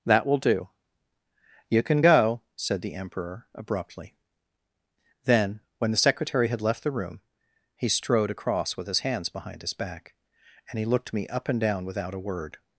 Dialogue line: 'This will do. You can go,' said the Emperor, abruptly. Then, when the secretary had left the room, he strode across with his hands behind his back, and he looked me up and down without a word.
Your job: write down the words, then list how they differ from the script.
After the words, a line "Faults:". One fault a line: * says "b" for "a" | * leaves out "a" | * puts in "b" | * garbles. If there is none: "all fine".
'That will do. You can go,' said the Emperor, abruptly. Then, when the secretary had left the room, he strode across with his hands behind his back, and he looked me up and down without a word.
Faults:
* says "That" for "This"